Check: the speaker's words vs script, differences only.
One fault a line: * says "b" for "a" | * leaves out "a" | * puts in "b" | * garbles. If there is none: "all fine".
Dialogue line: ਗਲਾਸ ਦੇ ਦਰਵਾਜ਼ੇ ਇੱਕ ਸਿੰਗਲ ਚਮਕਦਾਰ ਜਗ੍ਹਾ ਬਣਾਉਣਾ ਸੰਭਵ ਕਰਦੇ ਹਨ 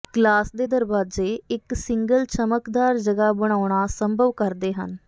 all fine